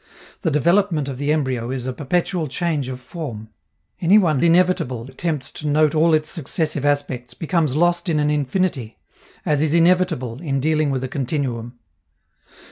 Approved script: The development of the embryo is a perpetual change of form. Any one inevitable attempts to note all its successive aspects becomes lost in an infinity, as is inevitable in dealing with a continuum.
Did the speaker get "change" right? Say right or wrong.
right